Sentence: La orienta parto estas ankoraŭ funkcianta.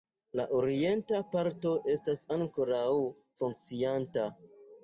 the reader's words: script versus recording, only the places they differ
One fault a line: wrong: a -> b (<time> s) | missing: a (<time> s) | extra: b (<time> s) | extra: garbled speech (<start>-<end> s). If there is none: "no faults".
no faults